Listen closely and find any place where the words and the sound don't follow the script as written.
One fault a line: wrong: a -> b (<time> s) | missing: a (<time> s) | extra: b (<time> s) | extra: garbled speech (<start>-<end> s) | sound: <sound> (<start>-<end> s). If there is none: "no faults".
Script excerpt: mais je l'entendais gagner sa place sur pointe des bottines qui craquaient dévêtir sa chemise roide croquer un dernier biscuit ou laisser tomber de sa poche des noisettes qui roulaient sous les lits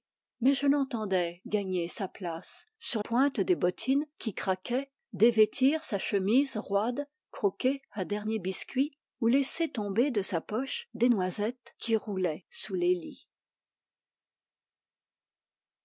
no faults